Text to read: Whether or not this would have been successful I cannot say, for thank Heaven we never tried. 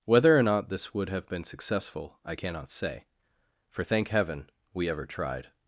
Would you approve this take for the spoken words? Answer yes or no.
no